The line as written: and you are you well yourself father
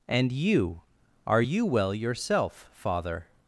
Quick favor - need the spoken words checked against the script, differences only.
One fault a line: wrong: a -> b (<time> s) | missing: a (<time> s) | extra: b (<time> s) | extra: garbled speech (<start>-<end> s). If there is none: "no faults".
no faults